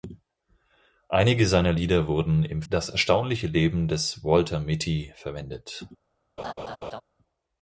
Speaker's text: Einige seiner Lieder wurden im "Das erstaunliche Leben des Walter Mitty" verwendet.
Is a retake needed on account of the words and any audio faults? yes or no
yes